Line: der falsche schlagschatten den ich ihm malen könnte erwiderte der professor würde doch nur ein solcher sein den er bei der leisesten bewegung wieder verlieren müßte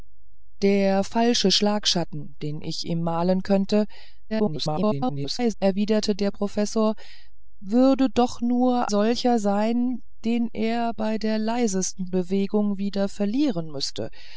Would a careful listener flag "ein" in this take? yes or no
yes